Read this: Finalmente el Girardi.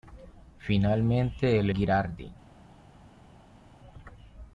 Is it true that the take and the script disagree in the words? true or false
false